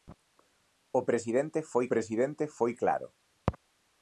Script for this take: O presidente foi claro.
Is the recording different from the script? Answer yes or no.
yes